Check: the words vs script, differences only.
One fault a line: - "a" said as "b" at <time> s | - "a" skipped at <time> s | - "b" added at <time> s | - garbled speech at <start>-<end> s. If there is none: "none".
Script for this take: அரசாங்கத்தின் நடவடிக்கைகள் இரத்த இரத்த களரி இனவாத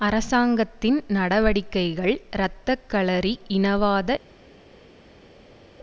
- "இரத்த" skipped at 2.8 s